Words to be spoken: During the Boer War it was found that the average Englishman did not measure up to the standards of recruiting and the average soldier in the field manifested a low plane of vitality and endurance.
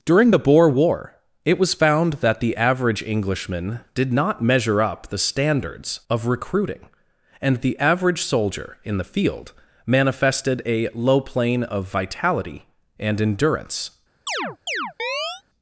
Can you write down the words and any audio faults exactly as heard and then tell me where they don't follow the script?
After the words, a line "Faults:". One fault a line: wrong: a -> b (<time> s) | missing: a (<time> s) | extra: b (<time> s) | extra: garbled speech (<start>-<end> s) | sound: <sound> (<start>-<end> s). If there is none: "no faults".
During the Boer War it was found that the average Englishman did not measure up the standards of recruiting and the average soldier in the field manifested a low plane of vitality and endurance.
Faults:
missing: to (5.1 s)
sound: chirp (14.3-15.4 s)